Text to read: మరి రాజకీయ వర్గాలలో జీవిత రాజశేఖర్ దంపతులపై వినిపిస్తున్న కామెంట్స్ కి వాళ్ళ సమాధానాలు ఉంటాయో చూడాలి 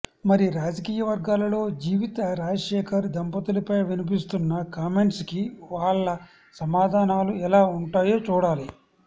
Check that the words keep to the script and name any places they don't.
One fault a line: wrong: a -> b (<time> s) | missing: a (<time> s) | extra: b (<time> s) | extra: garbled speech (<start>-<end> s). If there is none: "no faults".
extra: ఎలా (7.5 s)